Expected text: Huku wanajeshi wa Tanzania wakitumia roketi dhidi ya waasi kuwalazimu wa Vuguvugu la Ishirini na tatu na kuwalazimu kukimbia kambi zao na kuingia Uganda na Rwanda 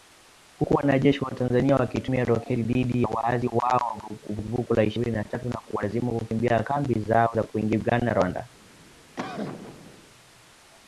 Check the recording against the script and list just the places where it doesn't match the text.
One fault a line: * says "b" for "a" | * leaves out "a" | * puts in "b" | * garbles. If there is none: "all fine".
* says "hao" for "kuwalazimu"